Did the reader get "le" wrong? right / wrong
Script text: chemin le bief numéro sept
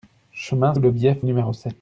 right